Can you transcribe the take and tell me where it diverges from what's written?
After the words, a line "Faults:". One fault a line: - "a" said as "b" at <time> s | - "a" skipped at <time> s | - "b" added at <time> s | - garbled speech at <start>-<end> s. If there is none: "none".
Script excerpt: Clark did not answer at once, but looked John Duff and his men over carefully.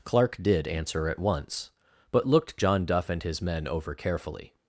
Clark did answer at once, but looked John Duff and his men over carefully.
Faults:
- "not" skipped at 0.7 s